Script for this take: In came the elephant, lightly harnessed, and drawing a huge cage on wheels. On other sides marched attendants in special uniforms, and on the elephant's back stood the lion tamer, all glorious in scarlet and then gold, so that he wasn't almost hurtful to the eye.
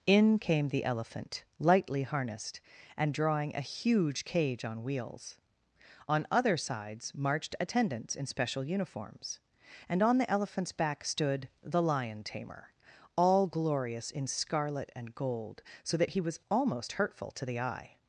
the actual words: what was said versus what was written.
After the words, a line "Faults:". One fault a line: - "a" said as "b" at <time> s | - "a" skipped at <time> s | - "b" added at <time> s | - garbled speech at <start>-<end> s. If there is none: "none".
In came the elephant, lightly harnessed, and drawing a huge cage on wheels. On other sides marched attendants in special uniforms, and on the elephant's back stood the lion tamer, all glorious in scarlet and gold, so that he was almost hurtful to the eye.
Faults:
- "then" skipped at 15.1 s
- "wasn't" said as "was" at 16.2 s